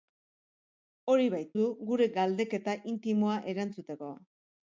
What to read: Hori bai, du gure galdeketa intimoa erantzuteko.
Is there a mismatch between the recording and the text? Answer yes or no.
no